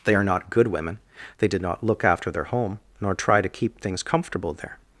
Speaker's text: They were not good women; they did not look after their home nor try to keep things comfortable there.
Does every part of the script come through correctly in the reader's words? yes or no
no